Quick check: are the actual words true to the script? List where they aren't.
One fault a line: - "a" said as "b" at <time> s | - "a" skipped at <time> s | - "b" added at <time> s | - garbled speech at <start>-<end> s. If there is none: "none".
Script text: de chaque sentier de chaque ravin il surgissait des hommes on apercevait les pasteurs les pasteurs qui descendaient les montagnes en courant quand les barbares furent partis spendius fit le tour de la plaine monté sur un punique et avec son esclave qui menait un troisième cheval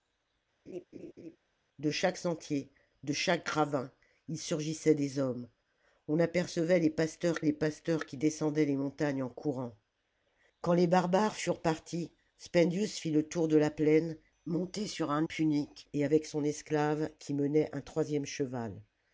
none